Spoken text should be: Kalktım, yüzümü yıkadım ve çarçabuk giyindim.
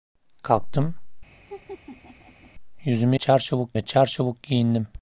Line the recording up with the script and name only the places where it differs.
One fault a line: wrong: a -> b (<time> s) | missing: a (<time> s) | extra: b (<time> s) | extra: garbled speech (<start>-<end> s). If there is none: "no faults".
wrong: yıkadım -> çarçabuk (3.1 s)